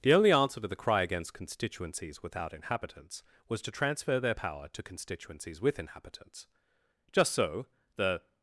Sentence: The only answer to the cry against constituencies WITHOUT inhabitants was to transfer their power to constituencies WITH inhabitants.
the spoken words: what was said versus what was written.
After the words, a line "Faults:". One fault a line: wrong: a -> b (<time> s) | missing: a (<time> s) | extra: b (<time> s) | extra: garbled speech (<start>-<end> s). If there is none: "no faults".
The only answer to the cry against constituencies WITHOUT inhabitants was to transfer their power to constituencies WITH inhabitants. Just so, the
Faults:
extra: Just so the (7.1 s)